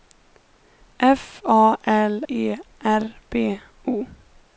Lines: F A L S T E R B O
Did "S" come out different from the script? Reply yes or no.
yes